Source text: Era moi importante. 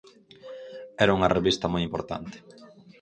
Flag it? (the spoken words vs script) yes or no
yes